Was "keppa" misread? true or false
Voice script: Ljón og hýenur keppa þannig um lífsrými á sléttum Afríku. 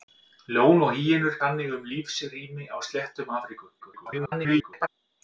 true